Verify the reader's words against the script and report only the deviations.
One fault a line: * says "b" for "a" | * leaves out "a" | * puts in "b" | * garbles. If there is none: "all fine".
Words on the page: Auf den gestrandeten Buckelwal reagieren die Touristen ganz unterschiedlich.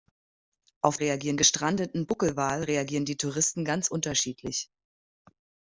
* says "reagieren" for "den"